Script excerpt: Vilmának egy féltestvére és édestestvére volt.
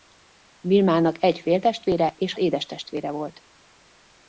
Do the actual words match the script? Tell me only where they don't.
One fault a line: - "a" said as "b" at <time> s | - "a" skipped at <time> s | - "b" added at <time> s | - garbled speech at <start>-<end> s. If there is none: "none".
none